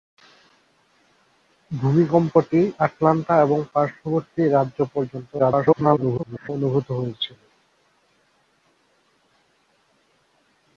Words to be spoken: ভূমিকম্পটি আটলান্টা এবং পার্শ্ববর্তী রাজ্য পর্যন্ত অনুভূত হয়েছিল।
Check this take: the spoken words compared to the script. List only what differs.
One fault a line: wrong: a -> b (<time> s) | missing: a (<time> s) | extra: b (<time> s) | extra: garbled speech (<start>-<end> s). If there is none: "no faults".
extra: garbled speech (5.4-6.5 s)